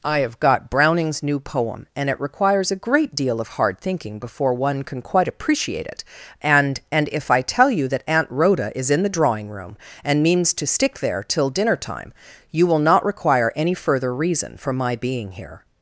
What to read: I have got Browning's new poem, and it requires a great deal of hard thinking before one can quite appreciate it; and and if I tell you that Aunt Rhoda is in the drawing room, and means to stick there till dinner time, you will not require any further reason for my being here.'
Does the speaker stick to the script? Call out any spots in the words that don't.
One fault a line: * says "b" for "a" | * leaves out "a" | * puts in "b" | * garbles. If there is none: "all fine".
all fine